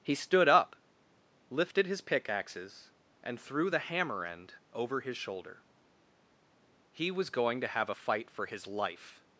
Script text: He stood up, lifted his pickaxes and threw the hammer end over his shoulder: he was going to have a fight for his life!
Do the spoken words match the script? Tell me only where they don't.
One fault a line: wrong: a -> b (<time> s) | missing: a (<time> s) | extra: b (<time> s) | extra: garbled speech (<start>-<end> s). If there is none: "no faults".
no faults